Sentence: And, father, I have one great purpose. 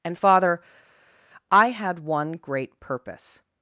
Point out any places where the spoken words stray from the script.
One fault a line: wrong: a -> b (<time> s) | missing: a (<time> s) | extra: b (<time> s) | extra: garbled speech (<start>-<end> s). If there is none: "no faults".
wrong: have -> had (1.7 s)